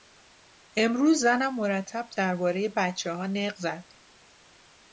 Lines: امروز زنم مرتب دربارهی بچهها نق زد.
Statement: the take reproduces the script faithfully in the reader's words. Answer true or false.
true